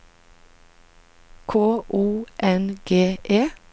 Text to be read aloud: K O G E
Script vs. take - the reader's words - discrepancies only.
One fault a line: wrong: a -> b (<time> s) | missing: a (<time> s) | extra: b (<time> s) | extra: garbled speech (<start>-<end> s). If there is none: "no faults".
extra: N (2.4 s)